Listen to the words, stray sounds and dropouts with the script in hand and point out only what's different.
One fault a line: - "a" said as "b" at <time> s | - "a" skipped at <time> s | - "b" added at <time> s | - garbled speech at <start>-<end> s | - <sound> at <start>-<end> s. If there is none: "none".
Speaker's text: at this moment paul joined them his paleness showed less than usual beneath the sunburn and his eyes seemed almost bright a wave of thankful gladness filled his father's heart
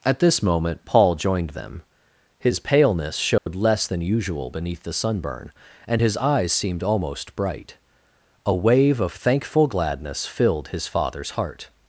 - dropout at 3.4-3.5 s